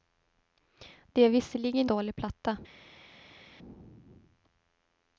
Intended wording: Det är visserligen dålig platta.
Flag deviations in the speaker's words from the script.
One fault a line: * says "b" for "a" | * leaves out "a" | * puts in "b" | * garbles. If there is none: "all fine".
all fine